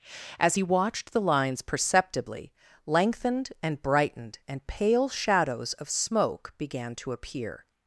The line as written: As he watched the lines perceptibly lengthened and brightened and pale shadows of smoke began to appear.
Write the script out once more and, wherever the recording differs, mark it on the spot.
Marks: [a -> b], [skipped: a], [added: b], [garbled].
As he watched the lines perceptibly lengthened and brightened and pale shadows of smoke began to appear.